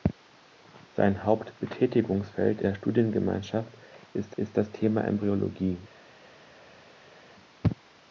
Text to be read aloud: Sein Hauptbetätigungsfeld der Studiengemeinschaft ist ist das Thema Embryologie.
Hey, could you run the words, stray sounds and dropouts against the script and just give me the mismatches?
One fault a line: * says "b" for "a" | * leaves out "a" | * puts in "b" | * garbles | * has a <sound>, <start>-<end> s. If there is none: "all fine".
all fine